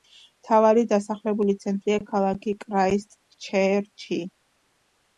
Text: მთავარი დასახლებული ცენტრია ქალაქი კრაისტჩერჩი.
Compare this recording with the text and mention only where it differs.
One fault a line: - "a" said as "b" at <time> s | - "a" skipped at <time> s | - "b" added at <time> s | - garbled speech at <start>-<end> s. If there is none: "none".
none